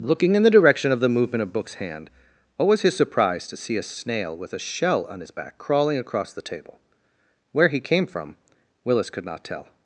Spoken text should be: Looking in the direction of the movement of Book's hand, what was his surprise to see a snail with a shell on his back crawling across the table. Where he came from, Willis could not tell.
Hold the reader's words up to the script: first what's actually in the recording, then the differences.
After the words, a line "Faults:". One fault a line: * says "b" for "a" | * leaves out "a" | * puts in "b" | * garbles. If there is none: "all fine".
Looking in the direction of the movement of Book's hand, what was his surprise to see a snail with a shell on his back crawling across the table. Where he came from, Willis could not tell.
Faults:
all fine